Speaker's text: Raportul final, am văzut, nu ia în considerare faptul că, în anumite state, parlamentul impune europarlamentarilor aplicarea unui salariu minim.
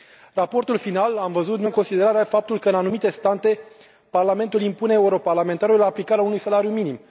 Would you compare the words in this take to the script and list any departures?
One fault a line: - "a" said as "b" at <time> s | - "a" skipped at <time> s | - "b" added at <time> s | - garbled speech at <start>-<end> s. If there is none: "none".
- "ia" skipped at 1.7 s